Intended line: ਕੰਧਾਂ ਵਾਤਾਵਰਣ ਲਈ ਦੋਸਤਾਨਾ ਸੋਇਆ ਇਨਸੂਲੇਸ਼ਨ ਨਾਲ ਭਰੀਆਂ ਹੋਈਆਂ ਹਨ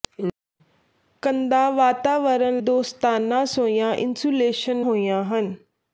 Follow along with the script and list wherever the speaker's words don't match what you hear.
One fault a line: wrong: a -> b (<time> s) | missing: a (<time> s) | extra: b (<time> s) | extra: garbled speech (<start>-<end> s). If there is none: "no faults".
missing: ਲਈ (2.6 s)
missing: ਨਾਲ ਭਰੀਆਂ (4.9 s)